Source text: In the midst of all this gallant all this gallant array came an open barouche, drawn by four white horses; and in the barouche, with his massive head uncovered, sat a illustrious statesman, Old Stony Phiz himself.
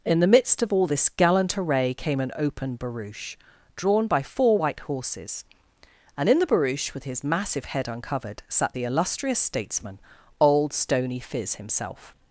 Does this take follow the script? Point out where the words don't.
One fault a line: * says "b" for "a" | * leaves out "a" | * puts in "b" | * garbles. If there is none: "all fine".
* leaves out "all this gallant"
* says "the" for "a"